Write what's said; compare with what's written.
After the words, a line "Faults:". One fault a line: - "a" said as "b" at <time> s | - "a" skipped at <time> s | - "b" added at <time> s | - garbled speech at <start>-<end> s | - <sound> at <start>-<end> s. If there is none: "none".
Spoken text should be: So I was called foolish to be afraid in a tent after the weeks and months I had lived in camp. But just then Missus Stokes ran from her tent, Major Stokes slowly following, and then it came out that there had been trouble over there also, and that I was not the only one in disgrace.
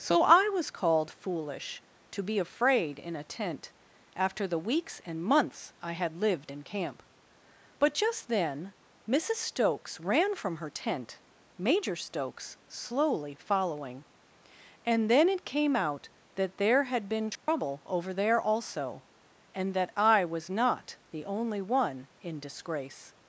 So I was called foolish to be afraid in a tent after the weeks and months I had lived in camp. But just then Missus Stokes ran from her tent, Major Stokes slowly following, and then it came out that there had been trouble over there also, and that I was not the only one in disgrace.
Faults:
- dropout at 17.4-17.5 s